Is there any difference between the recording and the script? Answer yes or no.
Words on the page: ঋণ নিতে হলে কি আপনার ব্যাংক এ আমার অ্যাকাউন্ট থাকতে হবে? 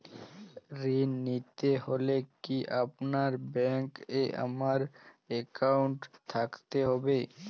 no